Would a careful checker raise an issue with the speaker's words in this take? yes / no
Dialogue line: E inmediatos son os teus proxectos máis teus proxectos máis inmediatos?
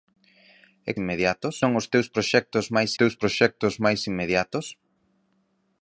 no